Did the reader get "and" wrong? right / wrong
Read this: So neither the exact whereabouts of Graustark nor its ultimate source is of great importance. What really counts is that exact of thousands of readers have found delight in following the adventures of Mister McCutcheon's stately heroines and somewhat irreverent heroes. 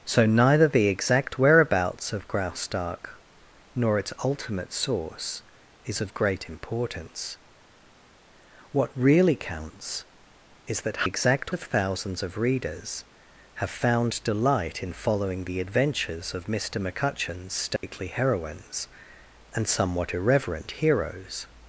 right